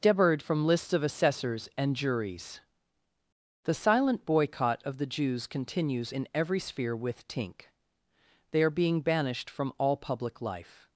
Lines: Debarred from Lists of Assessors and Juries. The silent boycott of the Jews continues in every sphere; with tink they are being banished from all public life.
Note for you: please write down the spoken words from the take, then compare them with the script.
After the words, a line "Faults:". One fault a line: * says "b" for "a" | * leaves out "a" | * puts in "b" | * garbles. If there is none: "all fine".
Debarred from Lists of Assessors and Juries. The silent boycott of the Jews continues in every sphere; with tink they are being banished from all public life.
Faults:
all fine